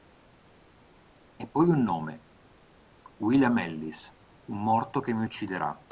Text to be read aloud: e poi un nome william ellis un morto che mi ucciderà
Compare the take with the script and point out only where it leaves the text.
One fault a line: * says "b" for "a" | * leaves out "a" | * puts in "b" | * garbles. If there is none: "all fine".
all fine